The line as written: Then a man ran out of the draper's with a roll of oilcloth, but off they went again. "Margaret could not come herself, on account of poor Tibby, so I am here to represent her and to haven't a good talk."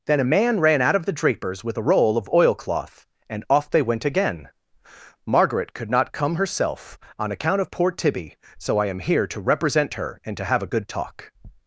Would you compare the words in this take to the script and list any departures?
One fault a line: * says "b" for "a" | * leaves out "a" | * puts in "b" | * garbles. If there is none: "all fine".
* says "and" for "but"
* says "have" for "haven't"